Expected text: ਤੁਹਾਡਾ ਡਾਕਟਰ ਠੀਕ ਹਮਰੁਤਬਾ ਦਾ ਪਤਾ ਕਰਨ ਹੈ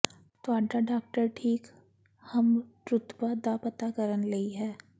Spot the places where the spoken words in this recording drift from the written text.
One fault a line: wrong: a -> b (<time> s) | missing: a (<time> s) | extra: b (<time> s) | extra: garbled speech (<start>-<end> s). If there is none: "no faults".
extra: ਲਈ (4.3 s)